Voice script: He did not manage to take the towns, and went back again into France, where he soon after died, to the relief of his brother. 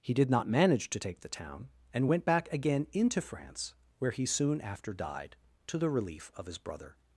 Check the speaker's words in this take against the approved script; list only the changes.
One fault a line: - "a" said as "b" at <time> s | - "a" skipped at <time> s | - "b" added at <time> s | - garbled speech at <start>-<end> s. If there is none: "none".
- "towns" said as "town" at 1.3 s